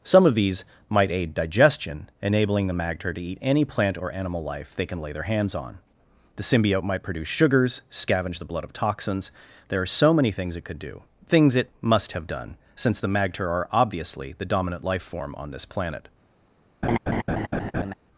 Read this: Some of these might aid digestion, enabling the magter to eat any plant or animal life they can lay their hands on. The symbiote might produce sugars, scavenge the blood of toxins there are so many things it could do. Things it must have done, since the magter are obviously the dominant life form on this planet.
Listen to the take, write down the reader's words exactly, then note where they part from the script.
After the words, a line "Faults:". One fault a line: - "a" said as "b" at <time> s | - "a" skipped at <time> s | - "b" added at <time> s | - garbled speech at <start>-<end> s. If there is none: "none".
Some of these might aid digestion, enabling the magter to eat any plant or animal life they can lay their hands on. The symbiote might produce sugars, scavenge the blood of toxins there are so many things it could do. Things it must have done, since the magter are obviously the dominant life form on this planet.
Faults:
none